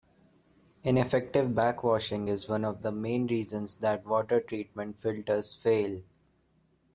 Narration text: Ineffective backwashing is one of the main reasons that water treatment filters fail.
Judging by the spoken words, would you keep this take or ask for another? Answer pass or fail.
pass